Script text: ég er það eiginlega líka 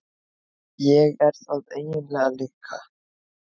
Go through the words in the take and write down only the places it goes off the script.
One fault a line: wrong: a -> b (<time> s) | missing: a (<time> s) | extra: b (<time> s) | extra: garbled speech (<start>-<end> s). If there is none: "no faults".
no faults